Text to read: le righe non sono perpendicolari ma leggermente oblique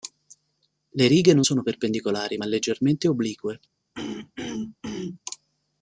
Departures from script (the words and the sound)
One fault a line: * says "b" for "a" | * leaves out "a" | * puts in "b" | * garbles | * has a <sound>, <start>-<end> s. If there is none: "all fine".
* has a throat clearing, 3.9-5.2 s